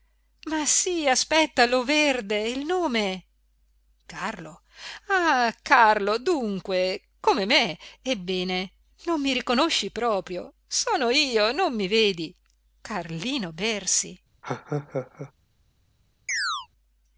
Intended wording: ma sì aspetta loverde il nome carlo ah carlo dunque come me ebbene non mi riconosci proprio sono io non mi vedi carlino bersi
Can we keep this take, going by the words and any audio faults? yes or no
no